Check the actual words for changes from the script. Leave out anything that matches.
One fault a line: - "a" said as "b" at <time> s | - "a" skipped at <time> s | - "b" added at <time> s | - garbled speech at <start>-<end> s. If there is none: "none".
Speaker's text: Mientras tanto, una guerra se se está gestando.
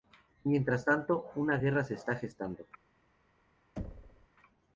- "se" skipped at 2.0 s